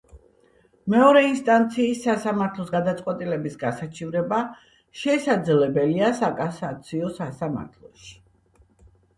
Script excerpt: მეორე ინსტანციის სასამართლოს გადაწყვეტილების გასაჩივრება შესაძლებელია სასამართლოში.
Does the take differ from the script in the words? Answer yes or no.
yes